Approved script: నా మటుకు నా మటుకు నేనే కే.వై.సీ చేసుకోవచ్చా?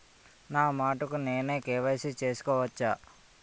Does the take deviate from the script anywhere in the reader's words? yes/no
yes